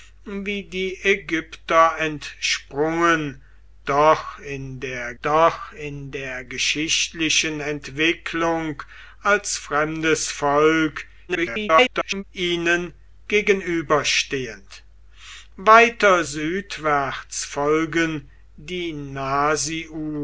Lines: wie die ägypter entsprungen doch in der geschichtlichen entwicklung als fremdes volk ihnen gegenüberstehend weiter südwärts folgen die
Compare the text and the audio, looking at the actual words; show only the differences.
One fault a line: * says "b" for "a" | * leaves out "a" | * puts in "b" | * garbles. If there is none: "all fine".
* puts in "doch in der"
* garbles